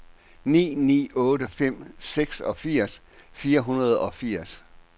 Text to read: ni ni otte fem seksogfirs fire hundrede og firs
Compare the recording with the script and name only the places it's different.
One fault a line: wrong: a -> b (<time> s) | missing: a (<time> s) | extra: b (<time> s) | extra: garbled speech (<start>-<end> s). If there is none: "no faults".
no faults